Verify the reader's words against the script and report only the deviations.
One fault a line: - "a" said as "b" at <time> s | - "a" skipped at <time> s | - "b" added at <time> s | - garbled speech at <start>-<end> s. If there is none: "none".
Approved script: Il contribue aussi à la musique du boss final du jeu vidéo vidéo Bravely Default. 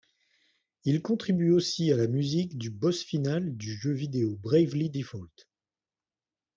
- "vidéo" skipped at 4.3 s